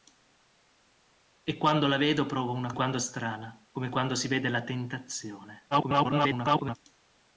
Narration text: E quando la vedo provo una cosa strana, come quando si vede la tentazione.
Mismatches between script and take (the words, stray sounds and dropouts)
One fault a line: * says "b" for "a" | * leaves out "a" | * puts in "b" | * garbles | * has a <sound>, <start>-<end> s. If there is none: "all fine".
* says "quando" for "cosa"
* garbles